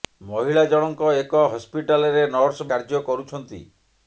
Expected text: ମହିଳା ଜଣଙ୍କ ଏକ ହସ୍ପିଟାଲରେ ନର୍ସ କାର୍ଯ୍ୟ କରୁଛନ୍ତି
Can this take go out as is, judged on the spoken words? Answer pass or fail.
pass